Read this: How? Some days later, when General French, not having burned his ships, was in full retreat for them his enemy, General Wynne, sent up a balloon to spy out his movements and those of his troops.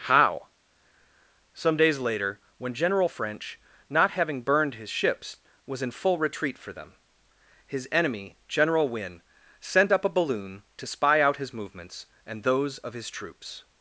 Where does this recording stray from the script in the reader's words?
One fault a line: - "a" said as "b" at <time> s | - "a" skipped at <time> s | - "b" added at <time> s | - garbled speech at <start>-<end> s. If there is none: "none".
none